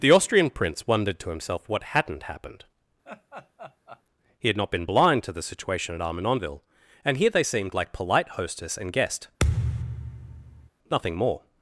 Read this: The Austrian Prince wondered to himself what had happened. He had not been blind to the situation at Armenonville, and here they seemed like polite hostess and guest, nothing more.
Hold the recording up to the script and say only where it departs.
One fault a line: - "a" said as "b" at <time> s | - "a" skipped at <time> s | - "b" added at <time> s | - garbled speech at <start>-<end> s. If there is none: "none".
- "had" said as "hadn't" at 1.8 s